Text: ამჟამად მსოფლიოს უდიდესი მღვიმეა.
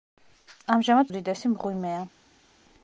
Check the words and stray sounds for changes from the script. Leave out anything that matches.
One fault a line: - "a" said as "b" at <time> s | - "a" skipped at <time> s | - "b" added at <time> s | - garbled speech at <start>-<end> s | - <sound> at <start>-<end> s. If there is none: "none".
- "მსოფლიოს" skipped at 1.1 s